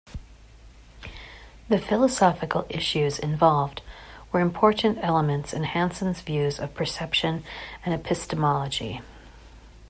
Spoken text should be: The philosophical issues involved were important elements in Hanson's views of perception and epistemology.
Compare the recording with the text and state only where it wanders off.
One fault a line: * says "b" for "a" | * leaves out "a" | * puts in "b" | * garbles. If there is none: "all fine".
all fine